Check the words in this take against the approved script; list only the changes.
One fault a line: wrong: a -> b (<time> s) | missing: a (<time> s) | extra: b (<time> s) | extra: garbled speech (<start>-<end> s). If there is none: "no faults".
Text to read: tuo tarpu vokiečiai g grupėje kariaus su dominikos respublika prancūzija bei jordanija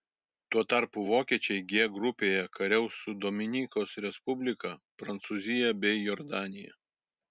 no faults